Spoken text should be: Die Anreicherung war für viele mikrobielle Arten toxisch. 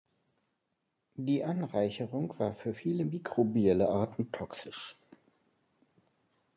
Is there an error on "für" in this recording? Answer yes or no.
no